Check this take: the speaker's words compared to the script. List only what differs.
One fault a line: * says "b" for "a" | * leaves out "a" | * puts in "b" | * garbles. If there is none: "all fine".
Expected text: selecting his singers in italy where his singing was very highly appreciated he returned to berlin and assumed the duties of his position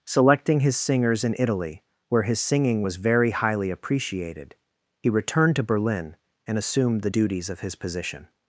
all fine